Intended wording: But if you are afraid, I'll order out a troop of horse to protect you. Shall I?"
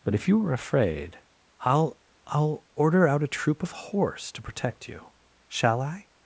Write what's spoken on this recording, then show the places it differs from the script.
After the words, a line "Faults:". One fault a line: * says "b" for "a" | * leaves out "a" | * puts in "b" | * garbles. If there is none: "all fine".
But if you are afraid, I'll I'll order out a troop of horse to protect you. Shall I?"
Faults:
* puts in "I'll"